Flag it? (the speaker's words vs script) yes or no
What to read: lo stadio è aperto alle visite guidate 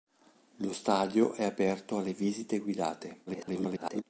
yes